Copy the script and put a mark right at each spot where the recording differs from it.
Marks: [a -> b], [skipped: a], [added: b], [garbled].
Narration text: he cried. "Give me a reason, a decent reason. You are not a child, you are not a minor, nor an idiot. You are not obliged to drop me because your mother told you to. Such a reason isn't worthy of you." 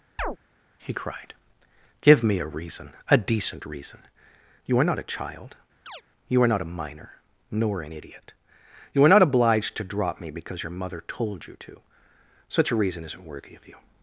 he cried. "Give me a reason, a decent reason. You are not a child, you are not a minor, nor an idiot. You are not obliged to drop me because your mother told you to. Such a reason isn't worthy of you."